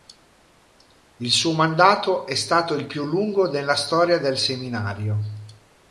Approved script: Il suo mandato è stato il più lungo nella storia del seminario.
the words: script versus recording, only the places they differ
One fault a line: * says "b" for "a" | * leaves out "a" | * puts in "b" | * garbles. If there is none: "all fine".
all fine